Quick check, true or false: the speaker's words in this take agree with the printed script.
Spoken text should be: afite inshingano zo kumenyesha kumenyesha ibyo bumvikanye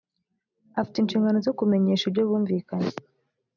false